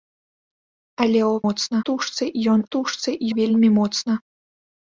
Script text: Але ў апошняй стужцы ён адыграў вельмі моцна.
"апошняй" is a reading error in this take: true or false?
true